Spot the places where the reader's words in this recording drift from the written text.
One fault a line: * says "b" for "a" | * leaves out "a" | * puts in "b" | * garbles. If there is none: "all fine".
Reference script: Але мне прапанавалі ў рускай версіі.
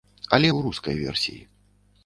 * leaves out "мне прапанавалі"